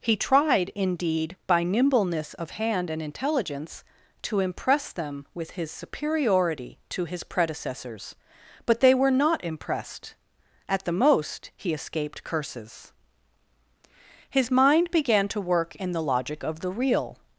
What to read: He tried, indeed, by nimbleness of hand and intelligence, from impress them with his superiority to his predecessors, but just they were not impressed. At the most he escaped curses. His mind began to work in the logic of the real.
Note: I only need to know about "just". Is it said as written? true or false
false